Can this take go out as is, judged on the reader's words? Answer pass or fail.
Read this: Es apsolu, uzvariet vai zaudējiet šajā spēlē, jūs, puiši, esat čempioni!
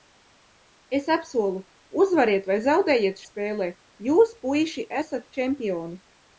fail